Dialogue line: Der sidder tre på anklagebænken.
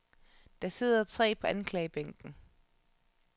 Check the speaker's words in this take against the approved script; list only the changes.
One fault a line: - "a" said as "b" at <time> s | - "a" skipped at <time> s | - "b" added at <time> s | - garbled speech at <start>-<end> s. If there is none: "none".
none